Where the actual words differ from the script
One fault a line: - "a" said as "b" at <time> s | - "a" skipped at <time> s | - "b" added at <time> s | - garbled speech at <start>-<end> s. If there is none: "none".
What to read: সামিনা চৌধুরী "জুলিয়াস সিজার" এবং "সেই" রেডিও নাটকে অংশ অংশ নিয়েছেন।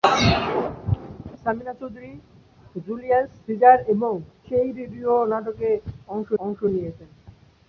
none